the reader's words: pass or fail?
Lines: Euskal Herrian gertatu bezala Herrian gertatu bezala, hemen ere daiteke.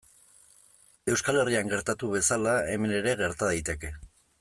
fail